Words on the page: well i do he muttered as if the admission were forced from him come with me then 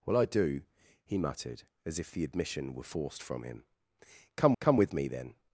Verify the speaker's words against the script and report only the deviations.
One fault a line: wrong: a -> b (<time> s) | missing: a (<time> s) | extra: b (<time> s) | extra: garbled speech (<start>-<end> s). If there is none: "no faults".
extra: come (4.6 s)